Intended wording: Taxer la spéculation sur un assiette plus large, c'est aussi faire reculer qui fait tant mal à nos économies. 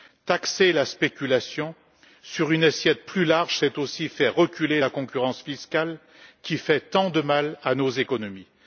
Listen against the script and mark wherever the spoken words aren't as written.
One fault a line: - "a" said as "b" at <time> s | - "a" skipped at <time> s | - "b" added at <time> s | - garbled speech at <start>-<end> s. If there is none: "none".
- "un" said as "une" at 2.5 s
- "la concurrence fiscale" added at 4.8 s
- "de" added at 7.1 s